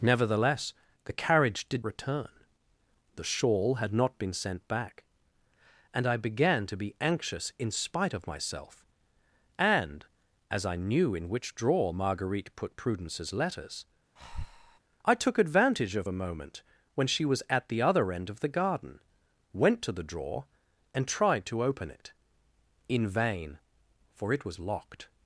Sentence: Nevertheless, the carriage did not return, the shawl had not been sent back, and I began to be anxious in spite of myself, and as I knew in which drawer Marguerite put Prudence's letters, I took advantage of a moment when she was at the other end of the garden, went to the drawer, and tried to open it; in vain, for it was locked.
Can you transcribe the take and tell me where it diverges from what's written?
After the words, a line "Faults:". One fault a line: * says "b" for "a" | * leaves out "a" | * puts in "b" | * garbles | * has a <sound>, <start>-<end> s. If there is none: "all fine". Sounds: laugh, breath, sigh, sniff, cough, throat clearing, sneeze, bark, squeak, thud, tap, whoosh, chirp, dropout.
Nevertheless, the carriage did return, the shawl had not been sent back, and I began to be anxious in spite of myself, and as I knew in which drawer Marguerite put Prudence's letters, I took advantage of a moment when she was at the other end of the garden, went to the drawer, and tried to open it; in vain, for it was locked.
Faults:
* leaves out "not"
* has a breath, 14.2-14.8 s